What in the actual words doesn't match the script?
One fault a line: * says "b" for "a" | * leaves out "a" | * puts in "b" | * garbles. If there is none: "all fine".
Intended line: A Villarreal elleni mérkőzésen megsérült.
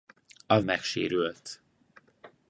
* leaves out "Villarreal elleni mérkőzésen"